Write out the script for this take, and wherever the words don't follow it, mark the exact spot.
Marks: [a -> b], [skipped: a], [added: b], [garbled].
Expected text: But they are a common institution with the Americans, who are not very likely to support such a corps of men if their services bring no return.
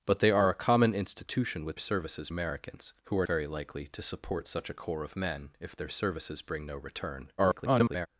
But they are a common institution with [the -> services] Americans, who are [skipped: not] very likely to support such a corps of men if their services bring no return. [garbled]